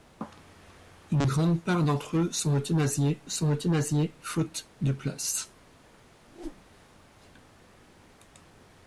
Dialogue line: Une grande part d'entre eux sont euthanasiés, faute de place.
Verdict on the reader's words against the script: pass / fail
fail